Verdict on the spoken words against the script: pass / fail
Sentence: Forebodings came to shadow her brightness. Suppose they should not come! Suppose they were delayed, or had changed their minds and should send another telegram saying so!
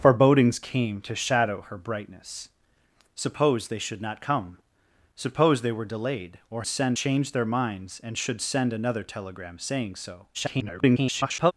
fail